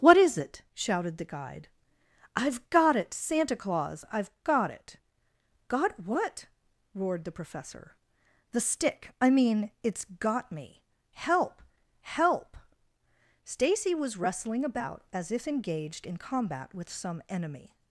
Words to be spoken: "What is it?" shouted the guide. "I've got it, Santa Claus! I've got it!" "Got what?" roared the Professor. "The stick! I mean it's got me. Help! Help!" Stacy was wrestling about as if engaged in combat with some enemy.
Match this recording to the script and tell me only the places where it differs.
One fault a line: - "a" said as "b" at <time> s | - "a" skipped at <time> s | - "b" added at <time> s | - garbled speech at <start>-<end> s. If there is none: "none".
none